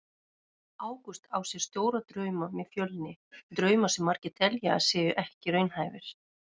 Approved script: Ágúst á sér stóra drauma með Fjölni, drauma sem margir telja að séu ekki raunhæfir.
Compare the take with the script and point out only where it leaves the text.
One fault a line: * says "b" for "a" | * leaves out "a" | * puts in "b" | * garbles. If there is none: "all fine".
all fine